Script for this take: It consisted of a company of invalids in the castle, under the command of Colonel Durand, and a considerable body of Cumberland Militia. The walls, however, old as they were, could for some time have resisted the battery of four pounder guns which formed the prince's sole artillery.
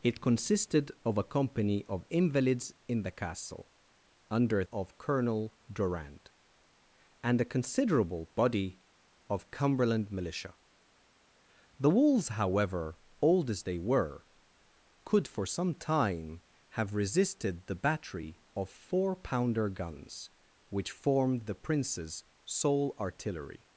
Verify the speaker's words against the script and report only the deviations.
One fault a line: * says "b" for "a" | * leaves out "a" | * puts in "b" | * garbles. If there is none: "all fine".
* leaves out "the command"